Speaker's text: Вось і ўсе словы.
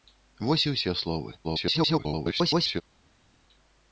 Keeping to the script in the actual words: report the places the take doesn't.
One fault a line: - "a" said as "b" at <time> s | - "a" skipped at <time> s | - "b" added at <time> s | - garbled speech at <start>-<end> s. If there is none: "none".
- garbled speech at 1.4-2.8 s